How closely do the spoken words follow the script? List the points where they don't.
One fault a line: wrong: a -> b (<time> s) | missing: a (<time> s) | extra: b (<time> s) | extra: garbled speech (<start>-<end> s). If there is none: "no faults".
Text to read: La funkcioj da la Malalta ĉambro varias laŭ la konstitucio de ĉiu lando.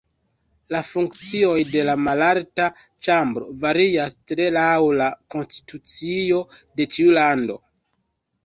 wrong: da -> de (1.7 s)
extra: tre (4.3 s)